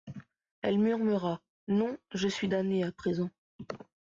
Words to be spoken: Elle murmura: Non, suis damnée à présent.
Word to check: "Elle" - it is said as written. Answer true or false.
true